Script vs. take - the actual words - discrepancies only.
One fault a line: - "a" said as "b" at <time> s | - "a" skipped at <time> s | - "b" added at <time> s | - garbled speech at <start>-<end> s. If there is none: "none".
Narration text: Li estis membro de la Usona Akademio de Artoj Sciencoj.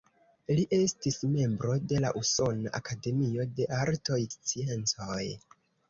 none